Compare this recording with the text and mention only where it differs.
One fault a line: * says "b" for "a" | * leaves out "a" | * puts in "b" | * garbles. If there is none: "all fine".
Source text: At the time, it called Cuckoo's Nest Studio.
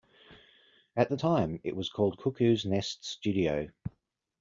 * puts in "was"